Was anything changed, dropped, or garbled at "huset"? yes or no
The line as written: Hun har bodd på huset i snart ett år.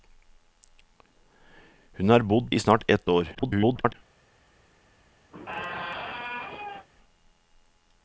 yes